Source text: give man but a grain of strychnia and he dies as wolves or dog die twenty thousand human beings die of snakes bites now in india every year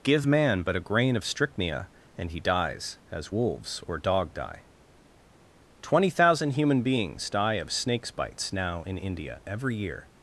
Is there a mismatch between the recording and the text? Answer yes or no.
no